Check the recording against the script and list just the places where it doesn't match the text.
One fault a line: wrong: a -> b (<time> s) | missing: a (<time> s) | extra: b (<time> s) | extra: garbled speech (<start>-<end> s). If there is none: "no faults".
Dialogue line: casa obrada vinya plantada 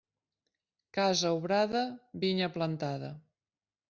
no faults